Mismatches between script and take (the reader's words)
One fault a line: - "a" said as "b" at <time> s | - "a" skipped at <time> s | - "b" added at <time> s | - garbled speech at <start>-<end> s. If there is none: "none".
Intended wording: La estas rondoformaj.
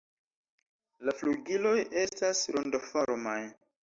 - "flugiloj" added at 1.1 s